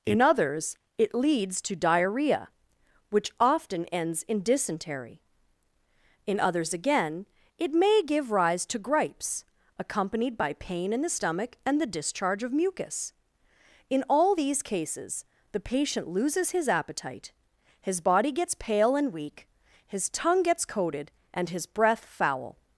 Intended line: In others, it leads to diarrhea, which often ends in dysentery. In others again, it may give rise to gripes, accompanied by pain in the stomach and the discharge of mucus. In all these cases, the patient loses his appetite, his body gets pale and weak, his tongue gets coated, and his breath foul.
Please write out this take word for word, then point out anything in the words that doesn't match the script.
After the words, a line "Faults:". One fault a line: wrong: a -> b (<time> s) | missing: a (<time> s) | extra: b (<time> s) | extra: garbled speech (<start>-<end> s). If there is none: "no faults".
In others, it leads to diarrhea, which often ends in dysentery. In others again, it may give rise to gripes, accompanied by pain in the stomach and the discharge of mucus. In all these cases, the patient loses his appetite, his body gets pale and weak, his tongue gets coated, and his breath foul.
Faults:
no faults